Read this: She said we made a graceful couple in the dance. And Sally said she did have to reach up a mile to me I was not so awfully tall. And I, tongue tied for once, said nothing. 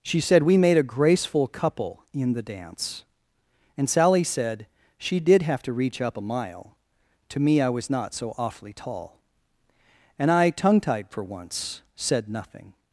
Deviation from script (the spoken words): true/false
false